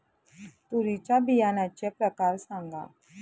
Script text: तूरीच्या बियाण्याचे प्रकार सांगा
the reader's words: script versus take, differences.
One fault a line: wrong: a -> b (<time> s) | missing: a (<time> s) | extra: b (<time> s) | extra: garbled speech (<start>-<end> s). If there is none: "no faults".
no faults